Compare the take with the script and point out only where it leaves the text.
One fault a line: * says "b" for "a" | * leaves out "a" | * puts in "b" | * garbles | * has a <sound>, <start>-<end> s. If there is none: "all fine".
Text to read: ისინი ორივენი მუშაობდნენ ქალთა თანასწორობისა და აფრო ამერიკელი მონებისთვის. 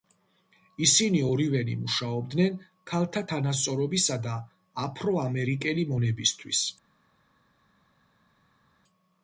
all fine